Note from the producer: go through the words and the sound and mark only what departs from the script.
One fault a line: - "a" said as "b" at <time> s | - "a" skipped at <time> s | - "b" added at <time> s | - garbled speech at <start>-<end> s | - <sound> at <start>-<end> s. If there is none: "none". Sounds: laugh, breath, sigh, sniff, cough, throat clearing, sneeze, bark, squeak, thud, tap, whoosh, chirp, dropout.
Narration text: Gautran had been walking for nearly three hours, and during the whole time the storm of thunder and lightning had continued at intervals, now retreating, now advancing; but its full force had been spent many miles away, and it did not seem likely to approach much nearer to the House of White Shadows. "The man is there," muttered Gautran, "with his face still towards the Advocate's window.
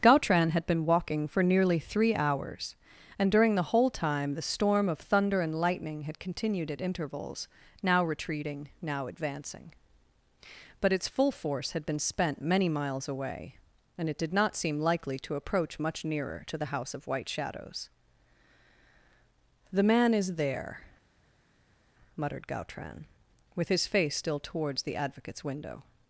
none